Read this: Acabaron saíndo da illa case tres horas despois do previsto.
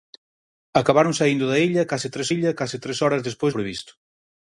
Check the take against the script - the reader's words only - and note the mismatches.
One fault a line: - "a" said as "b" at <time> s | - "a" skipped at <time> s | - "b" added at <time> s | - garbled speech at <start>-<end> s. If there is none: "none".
- "illa case tres" added at 2.3 s
- "do" skipped at 3.5 s